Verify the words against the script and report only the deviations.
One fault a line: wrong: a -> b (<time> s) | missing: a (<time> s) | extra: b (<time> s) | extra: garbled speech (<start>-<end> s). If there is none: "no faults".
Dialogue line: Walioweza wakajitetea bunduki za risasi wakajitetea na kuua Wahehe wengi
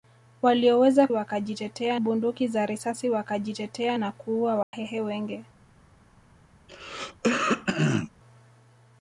no faults